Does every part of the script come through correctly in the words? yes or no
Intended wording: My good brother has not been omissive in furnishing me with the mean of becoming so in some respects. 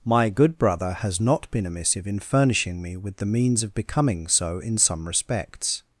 no